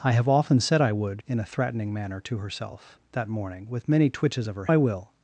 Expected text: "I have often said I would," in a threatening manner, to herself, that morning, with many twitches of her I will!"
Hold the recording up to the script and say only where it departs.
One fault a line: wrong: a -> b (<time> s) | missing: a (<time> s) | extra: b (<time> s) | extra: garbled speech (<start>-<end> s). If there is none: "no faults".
no faults